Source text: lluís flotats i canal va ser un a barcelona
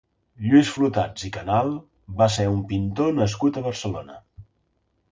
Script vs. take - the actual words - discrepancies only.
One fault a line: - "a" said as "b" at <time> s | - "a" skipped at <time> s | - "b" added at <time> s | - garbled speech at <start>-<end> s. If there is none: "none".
- "pintor nascut" added at 2.7 s